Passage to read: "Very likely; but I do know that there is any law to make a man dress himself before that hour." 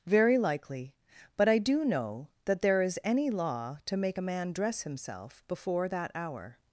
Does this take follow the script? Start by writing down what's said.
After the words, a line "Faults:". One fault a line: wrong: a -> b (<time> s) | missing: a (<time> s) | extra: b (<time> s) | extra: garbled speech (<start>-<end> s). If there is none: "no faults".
"Very likely; but I do know that there is any law to make a man dress himself before that hour."
Faults:
no faults